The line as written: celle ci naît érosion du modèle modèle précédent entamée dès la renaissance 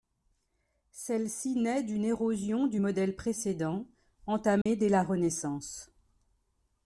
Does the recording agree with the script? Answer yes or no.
no